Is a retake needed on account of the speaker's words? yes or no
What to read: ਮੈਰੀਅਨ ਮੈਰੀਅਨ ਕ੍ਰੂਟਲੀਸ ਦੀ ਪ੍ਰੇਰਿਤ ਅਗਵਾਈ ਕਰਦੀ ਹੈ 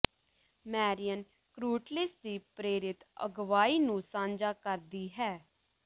yes